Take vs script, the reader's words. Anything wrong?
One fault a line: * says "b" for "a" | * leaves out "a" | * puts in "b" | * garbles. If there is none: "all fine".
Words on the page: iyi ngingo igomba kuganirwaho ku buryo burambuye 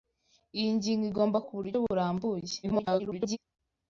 * leaves out "kuganirwaho"
* garbles